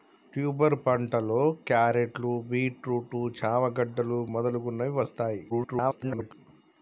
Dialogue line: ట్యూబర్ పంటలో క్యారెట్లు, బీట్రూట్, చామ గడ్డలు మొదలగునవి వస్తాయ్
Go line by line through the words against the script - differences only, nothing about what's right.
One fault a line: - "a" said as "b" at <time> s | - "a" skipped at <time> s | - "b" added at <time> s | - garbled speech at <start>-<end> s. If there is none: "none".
- garbled speech at 5.5-6.3 s